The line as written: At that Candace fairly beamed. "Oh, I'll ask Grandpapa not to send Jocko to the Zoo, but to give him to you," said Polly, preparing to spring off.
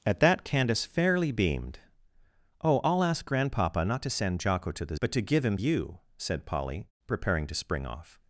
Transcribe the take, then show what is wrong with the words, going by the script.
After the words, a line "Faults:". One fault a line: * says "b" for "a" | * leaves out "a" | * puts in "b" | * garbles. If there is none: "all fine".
At that Candace fairly beamed. "Oh, I'll ask Grandpapa not to send Jocko to the But to give him you," said Polly, preparing to spring off.
Faults:
* leaves out "Zoo"
* leaves out "to"